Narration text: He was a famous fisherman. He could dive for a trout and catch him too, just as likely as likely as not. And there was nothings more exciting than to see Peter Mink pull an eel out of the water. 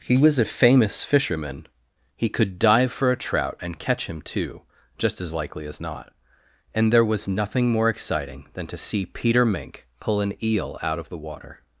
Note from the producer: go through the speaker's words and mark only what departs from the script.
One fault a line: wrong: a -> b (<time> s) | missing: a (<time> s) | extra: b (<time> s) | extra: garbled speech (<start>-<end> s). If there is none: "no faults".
missing: likely as (5.8 s)
wrong: nothings -> nothing (7.3 s)